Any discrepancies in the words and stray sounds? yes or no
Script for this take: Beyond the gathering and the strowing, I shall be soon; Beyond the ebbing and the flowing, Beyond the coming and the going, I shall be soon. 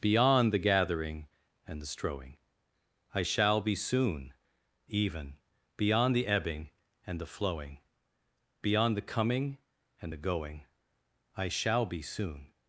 yes